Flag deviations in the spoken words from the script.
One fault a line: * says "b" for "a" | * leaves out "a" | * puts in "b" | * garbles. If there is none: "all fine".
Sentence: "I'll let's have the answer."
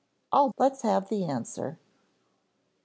all fine